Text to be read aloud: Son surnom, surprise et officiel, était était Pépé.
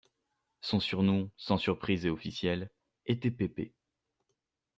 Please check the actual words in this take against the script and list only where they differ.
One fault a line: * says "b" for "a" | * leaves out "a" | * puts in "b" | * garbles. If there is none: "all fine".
* puts in "sans"
* leaves out "était"